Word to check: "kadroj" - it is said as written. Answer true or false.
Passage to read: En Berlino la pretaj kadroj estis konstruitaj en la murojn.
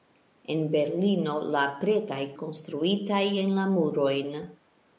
false